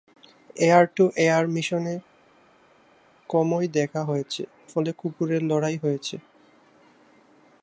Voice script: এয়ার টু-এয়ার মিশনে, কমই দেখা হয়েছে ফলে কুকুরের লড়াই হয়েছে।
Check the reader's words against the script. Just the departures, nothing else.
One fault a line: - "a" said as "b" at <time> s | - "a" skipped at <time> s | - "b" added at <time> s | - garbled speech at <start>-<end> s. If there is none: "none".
none